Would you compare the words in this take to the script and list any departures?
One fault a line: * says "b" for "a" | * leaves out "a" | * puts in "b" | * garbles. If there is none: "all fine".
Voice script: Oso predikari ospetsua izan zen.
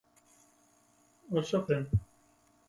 * leaves out "predikari ospetsua izan"